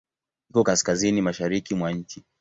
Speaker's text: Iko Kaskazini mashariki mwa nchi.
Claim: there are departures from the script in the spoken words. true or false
false